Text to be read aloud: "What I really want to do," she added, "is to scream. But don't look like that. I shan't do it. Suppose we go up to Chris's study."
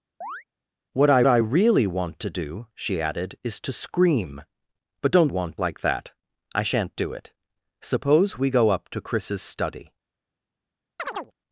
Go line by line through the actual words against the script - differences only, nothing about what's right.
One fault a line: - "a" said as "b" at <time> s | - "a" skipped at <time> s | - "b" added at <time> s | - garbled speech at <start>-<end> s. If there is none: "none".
- "I" added at 1.3 s
- "look" said as "want" at 5.3 s